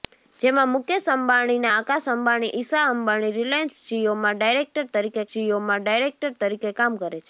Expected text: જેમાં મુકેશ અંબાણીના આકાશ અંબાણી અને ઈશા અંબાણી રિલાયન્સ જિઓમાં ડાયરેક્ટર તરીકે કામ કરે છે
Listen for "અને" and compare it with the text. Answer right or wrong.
wrong